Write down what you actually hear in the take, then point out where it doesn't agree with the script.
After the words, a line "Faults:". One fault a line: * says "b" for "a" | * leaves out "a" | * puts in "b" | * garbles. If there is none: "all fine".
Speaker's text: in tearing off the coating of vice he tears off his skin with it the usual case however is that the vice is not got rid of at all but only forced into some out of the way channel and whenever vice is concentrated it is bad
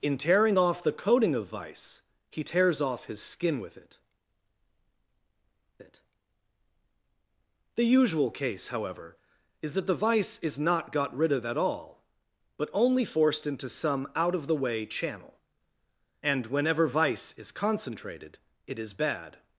in tearing off the coating of vice he tears off his skin with it it the usual case however is that the vice is not got rid of at all but only forced into some out of the way channel and whenever vice is concentrated it is bad
Faults:
* puts in "it"